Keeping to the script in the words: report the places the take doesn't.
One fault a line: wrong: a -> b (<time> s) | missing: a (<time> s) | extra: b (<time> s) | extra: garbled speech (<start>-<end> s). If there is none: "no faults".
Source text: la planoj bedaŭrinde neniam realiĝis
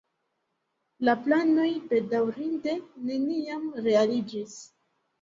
no faults